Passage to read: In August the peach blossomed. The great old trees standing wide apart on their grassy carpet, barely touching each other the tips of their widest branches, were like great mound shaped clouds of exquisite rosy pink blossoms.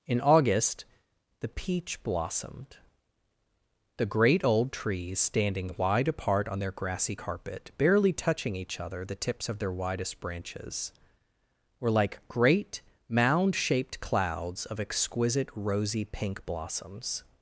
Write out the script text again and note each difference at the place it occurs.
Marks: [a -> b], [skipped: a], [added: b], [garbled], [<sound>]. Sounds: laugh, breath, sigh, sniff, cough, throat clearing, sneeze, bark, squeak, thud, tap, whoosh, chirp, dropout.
In August the peach blossomed. The great old trees standing wide apart on their grassy carpet, barely touching each other the tips of their widest branches, were like great mound shaped clouds of exquisite rosy pink blossoms.